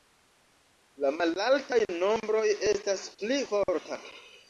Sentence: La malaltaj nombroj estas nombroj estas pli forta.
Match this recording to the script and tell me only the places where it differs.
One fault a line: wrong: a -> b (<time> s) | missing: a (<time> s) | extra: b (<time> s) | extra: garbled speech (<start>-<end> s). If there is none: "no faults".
missing: nombroj estas (3.0 s)